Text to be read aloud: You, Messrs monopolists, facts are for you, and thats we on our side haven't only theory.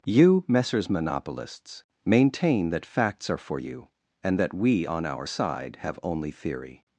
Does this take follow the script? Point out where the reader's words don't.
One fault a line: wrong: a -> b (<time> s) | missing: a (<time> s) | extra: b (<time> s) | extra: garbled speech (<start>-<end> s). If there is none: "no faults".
extra: maintain that (2.0 s)
wrong: thats -> that (4.4 s)
wrong: haven't -> have (5.8 s)